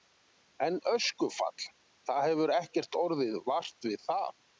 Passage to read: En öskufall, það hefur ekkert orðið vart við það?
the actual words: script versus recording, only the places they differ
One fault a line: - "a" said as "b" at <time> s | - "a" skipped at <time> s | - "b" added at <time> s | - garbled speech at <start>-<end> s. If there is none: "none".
none